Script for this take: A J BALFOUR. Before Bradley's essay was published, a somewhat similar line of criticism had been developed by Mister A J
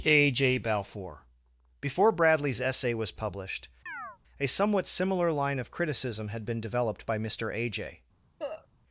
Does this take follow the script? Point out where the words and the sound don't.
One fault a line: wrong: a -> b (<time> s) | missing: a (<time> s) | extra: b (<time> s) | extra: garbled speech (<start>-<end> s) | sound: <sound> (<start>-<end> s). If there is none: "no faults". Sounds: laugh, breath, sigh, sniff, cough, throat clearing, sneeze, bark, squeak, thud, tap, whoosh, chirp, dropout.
sound: chirp (3.9-4.2 s)
sound: cough (8.4-8.7 s)